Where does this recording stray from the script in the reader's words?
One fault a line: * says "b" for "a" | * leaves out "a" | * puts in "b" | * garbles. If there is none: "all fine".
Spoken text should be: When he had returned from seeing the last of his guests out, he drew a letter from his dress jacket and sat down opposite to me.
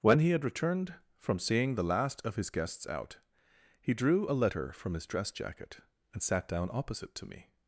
all fine